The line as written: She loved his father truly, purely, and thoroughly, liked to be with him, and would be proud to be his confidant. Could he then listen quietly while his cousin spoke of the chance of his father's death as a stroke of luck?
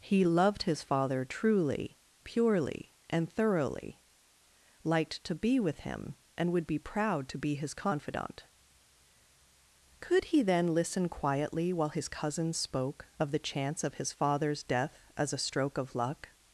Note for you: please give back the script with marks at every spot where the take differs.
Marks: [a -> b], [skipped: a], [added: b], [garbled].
[She -> He] loved his father truly, purely, and thoroughly, liked to be with him, and would be proud to be his confidant. Could he then listen quietly while his cousin spoke of the chance of his father's death as a stroke of luck?